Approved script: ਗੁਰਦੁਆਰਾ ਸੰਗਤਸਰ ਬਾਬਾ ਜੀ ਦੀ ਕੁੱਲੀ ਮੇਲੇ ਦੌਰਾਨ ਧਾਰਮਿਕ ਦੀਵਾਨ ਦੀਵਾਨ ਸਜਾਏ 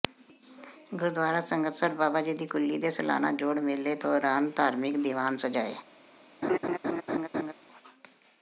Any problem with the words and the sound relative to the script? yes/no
yes